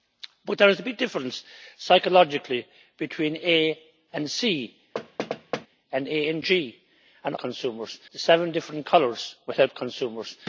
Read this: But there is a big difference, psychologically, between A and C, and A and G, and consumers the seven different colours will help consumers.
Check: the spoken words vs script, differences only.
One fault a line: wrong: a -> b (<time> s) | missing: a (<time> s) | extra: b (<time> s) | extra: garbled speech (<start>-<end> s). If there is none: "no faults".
no faults